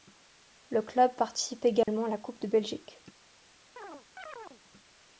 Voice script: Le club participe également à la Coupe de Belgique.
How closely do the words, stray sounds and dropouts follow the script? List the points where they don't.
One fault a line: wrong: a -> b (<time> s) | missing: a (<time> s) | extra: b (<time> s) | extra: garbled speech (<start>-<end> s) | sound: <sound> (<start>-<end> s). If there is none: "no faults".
sound: dropout (1.8-1.9 s)
sound: chirp (3.8-4.6 s)